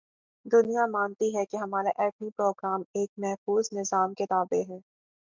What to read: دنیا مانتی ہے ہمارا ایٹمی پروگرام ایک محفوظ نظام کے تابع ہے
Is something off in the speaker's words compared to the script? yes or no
yes